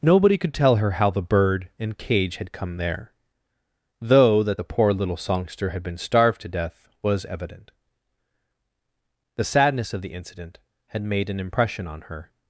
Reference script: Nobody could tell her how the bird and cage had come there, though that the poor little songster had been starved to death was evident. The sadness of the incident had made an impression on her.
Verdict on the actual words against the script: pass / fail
pass